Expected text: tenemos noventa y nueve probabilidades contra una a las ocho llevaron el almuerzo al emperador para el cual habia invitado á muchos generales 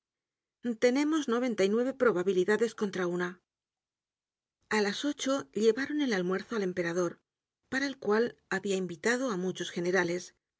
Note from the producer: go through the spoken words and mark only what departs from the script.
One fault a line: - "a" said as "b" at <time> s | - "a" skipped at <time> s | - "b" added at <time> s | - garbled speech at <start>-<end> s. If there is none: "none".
none